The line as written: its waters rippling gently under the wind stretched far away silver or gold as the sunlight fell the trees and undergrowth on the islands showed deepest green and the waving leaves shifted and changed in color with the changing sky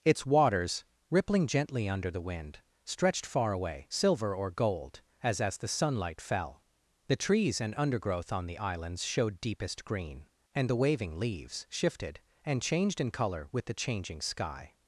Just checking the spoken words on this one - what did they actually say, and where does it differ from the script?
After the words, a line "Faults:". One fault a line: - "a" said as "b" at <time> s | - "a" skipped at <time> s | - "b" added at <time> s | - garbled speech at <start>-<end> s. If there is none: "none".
its waters rippling gently under the wind stretched far away silver or gold as as the sunlight fell the trees and undergrowth on the islands showed deepest green and the waving leaves shifted and changed in color with the changing sky
Faults:
- "as" added at 5.4 s